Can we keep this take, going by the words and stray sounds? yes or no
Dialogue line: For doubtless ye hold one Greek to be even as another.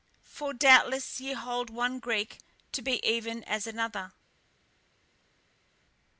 yes